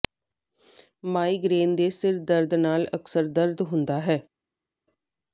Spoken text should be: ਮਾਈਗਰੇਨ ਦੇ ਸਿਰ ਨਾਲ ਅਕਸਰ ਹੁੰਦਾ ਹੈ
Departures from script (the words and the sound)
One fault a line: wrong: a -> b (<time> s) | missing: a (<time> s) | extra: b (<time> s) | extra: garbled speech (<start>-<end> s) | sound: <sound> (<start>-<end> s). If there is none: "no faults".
extra: ਦਰਦ (2.2 s)
extra: ਦਰਦ (3.3 s)